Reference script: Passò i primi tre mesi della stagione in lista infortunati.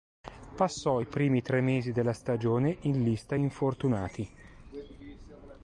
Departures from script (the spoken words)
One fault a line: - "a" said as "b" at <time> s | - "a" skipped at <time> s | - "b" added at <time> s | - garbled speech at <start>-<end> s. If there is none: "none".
none